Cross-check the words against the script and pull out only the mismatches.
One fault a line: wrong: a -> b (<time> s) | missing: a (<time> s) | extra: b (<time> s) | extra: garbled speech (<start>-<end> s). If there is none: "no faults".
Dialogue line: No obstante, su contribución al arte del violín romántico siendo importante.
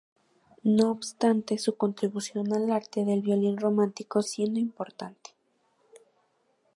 no faults